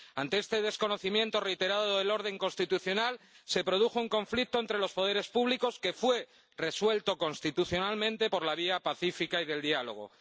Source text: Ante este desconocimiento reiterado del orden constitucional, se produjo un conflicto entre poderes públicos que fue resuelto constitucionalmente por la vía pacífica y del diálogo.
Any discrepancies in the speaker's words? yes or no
yes